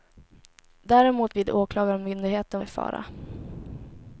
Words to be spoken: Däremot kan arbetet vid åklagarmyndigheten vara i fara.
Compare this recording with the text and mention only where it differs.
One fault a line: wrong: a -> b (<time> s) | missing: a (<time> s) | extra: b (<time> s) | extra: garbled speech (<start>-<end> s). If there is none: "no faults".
missing: kan arbetet (1.3 s)
missing: vara (2.6 s)